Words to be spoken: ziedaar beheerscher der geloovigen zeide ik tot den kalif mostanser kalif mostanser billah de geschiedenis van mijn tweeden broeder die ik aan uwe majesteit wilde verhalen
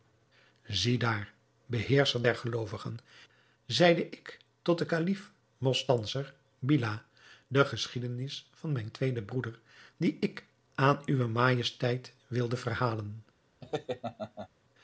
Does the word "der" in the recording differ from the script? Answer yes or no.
no